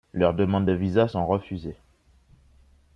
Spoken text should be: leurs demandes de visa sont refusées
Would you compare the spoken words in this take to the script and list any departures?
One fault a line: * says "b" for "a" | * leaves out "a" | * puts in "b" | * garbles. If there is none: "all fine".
all fine